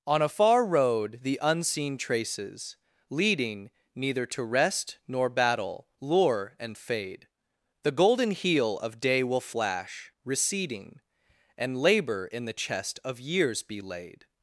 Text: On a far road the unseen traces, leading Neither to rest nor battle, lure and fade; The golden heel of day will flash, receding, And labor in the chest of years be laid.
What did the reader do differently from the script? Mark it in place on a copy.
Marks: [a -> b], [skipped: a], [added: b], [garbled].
On a far road the unseen traces, leading Neither to rest nor battle, lure and fade; The golden heel of day will flash, receding, And labor in the chest of years be laid.